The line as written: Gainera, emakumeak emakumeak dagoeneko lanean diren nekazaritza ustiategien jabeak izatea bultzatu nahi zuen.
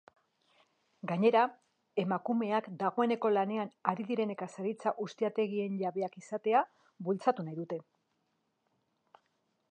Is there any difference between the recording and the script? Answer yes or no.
yes